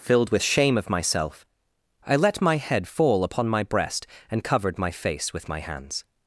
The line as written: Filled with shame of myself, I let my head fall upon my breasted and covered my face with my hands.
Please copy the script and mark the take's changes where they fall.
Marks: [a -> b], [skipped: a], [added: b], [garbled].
Filled with shame of myself, I let my head fall upon my [breasted -> breast] and covered my face with my hands.